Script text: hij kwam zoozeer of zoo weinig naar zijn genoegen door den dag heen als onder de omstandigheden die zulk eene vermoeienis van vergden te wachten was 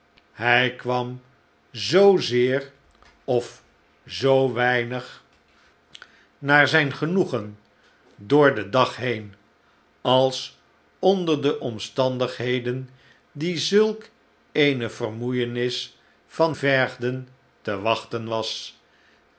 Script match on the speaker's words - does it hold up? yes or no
yes